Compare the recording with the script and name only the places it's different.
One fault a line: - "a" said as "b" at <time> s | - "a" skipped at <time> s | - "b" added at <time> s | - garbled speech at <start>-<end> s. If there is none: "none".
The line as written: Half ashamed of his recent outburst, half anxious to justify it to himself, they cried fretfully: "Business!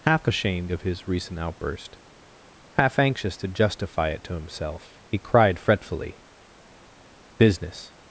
- "they" said as "he" at 5.1 s